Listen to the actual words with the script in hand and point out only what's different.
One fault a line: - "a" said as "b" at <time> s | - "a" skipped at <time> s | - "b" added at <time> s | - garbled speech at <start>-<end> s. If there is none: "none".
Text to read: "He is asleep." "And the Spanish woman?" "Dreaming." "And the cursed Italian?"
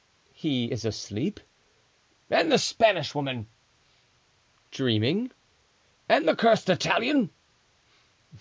none